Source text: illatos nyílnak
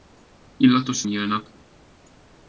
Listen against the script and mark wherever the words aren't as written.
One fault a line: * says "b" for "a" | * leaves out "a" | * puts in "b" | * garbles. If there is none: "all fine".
all fine